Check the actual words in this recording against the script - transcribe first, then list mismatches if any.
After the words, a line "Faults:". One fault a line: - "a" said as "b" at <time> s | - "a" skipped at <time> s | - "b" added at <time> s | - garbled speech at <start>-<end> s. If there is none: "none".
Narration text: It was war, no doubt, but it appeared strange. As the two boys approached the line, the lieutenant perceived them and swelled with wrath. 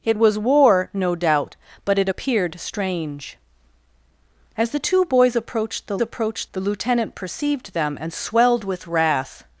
It was war, no doubt, but it appeared strange. As the two boys approached the approached, the lieutenant perceived them and swelled with wrath.
Faults:
- "line" said as "approached" at 6.0 s